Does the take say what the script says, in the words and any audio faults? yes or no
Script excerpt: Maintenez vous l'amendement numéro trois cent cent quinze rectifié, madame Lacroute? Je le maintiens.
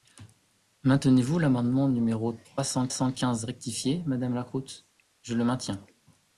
yes